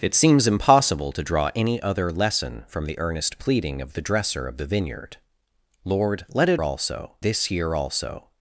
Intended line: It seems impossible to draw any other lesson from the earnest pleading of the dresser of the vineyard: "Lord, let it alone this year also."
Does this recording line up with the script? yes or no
no